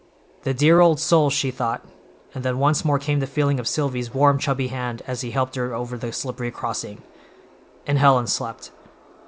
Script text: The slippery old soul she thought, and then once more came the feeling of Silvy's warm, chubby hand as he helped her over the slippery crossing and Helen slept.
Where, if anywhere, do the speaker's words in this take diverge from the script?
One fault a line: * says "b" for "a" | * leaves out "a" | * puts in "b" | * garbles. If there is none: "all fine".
* says "dear" for "slippery"